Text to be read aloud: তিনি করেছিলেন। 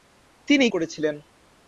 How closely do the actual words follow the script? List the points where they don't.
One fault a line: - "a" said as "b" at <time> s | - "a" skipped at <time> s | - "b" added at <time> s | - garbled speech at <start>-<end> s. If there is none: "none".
none